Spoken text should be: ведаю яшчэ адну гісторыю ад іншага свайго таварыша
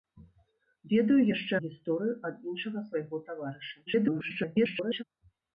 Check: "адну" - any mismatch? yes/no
yes